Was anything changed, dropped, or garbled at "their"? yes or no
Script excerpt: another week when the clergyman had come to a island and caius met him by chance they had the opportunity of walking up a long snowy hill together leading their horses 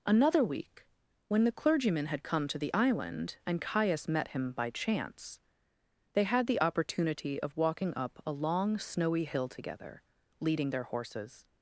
no